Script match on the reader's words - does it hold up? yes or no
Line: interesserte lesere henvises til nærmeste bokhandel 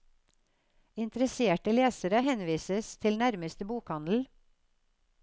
yes